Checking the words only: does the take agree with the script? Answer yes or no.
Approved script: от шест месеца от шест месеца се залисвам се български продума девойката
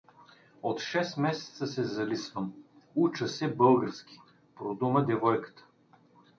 no